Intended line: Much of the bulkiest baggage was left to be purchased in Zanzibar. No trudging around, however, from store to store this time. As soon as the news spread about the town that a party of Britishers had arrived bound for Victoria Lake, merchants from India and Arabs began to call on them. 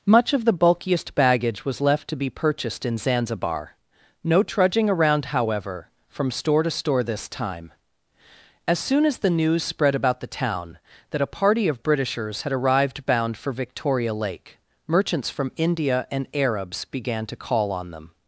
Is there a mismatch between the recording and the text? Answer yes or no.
no